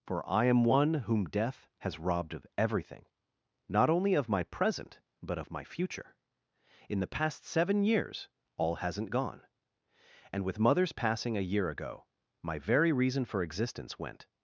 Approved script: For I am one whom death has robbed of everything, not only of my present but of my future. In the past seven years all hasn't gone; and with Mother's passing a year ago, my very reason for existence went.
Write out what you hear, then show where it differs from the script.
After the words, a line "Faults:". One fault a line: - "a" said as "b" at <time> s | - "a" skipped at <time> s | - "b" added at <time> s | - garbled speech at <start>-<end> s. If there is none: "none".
For I am one whom death has robbed of everything, not only of my present but of my future. In the past seven years all hasn't gone; and with Mother's passing a year ago, my very reason for existence went.
Faults:
none